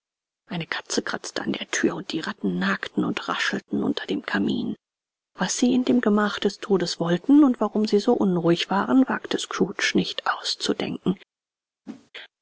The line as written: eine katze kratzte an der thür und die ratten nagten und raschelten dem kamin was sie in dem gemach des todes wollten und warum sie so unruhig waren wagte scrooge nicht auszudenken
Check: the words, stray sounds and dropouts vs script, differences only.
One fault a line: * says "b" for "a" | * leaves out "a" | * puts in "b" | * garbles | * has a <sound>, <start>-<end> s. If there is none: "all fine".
* puts in "unter"
* has a whoosh, 11.9-12.1 s